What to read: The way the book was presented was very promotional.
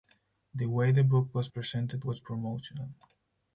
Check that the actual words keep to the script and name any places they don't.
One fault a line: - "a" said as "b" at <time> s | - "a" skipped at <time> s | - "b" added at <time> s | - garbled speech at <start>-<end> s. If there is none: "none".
- "very" skipped at 2.2 s